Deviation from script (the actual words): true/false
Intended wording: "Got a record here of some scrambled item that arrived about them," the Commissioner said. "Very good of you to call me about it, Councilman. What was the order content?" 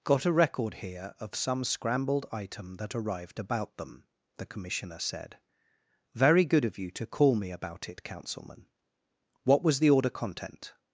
false